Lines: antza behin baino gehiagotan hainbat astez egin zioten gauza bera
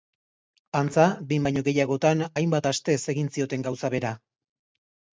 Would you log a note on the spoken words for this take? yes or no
no